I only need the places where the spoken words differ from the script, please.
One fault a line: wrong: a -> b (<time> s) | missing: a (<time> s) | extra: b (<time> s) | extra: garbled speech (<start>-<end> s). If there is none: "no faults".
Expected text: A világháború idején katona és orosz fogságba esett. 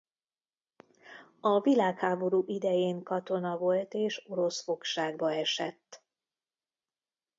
extra: volt (3.6 s)